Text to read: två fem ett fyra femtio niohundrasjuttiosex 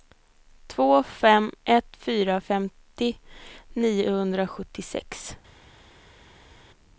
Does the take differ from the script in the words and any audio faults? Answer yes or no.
no